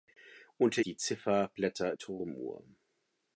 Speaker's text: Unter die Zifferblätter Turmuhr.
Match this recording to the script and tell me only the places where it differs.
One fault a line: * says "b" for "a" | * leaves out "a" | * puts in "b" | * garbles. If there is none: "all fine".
all fine